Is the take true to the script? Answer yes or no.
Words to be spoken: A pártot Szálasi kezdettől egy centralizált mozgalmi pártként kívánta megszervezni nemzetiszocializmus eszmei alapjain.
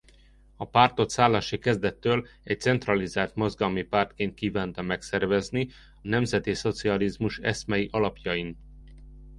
yes